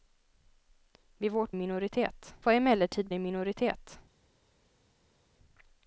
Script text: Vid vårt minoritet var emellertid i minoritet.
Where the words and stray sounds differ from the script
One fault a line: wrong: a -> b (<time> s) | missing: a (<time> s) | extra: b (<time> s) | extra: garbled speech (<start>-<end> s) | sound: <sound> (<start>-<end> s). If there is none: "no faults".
no faults